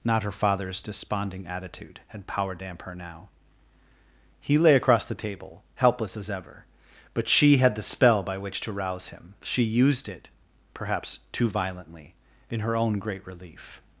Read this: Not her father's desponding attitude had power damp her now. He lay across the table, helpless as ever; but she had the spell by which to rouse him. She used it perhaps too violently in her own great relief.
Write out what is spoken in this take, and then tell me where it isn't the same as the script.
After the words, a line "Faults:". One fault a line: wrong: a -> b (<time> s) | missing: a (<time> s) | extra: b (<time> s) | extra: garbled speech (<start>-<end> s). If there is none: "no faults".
Not her father's desponding attitude had power damp her now. He lay across the table, helpless as ever; but she had the spell by which to rouse him. She used it perhaps too violently in her own great relief.
Faults:
no faults